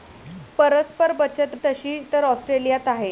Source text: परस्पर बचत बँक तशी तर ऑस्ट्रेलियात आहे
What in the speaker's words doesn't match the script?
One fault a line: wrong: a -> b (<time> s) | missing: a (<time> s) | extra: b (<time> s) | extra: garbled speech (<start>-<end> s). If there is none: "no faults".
missing: बँक (1.6 s)